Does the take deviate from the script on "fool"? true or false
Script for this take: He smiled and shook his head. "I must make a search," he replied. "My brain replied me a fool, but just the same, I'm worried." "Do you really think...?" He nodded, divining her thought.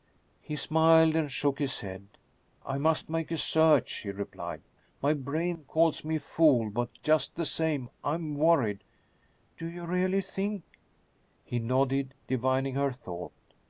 false